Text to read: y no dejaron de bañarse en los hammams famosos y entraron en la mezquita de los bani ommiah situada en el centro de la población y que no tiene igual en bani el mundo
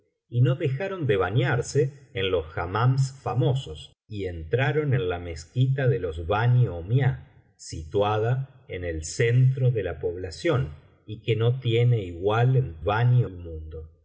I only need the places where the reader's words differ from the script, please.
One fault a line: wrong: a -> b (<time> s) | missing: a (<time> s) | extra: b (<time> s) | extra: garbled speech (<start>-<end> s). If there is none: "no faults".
no faults